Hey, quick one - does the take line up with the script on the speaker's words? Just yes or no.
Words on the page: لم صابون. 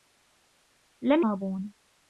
yes